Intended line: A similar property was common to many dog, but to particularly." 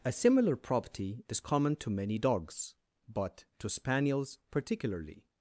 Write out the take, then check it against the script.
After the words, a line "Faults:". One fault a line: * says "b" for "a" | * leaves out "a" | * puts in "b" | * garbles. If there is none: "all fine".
A similar property is common to many dogs, but to spaniels particularly."
Faults:
* says "is" for "was"
* says "dogs" for "dog"
* puts in "spaniels"